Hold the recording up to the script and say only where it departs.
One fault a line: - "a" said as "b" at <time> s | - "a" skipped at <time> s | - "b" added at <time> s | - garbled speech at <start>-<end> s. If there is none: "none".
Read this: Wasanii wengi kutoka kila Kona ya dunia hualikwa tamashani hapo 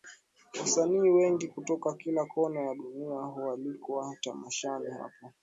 none